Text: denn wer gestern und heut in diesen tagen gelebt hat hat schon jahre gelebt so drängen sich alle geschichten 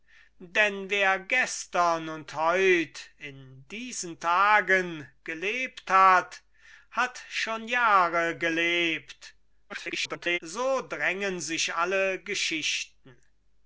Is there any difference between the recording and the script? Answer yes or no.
yes